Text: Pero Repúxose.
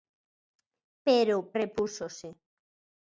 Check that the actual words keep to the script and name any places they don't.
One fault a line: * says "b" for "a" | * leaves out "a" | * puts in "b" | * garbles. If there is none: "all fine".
all fine